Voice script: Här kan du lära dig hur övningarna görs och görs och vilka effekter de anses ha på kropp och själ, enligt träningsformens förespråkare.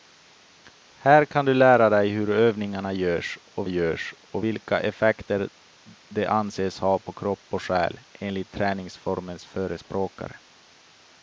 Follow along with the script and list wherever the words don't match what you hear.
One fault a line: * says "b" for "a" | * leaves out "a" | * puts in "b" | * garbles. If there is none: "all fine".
all fine